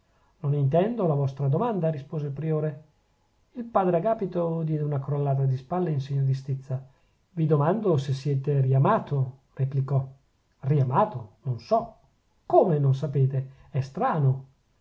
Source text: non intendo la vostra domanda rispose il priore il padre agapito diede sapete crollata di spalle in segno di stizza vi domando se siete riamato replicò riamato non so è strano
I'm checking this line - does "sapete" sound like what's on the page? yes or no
no